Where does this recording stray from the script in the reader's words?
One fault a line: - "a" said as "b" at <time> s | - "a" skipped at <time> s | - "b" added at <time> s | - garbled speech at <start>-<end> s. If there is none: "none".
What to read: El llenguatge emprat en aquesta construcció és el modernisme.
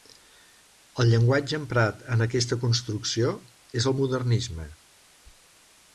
none